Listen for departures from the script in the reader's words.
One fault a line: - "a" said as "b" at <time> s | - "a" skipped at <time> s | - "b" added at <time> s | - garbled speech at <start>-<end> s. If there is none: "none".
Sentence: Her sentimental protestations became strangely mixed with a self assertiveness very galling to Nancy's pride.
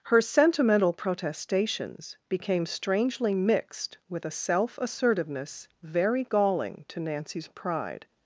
none